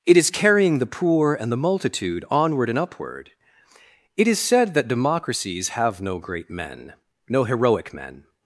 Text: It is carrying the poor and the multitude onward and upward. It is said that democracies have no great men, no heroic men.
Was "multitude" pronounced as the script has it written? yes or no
yes